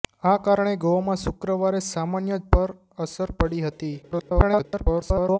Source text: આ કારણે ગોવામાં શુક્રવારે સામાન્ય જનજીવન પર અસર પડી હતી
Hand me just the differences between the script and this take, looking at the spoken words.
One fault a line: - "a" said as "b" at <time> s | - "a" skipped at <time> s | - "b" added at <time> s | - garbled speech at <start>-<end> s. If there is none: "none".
- "જનજીવન" skipped at 2.4 s
- garbled speech at 4.0-5.4 s